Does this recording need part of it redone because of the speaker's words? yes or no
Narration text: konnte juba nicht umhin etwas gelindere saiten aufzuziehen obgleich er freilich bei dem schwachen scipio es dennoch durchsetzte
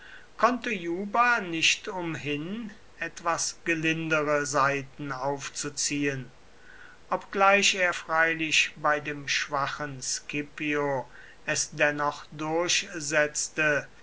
no